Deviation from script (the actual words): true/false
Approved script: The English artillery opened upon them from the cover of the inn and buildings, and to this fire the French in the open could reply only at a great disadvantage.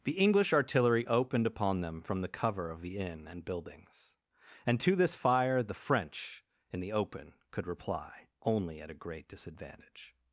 false